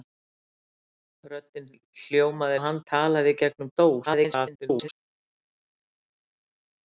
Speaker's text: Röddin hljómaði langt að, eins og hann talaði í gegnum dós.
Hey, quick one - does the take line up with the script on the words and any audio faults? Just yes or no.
no